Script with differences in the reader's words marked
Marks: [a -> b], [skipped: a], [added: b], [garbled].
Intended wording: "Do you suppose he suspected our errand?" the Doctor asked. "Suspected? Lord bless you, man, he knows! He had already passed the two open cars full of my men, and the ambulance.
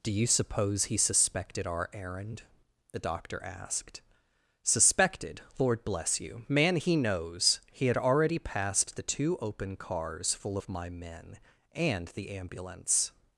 "Do you suppose he suspected our errand?" the Doctor asked. "Suspected? Lord bless you, man, he knows! He had already passed the two open cars full of my men, and the ambulance.